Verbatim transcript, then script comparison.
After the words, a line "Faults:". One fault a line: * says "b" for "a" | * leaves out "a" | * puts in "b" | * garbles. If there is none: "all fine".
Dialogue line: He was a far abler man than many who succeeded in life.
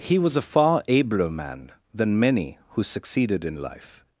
He was a far abler man than many who succeeded in life.
Faults:
all fine